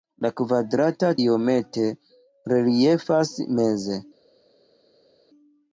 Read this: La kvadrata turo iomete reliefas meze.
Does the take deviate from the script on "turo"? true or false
true